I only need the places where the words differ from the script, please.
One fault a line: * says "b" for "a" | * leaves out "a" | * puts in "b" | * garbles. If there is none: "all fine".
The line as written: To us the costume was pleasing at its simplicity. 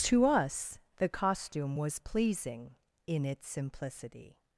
* says "in" for "at"